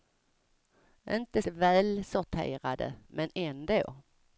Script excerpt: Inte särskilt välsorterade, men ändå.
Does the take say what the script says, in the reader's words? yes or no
no